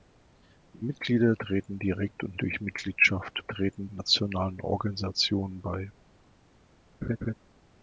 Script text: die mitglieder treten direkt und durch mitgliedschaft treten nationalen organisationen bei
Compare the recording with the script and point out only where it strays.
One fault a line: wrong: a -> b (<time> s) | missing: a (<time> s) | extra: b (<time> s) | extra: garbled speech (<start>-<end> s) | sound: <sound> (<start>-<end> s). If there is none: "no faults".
sound: laugh (7.0-7.3 s)